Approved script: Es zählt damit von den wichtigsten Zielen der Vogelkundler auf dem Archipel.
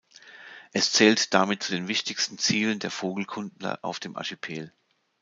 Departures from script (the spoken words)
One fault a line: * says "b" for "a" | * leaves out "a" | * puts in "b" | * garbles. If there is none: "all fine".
* says "zu" for "von"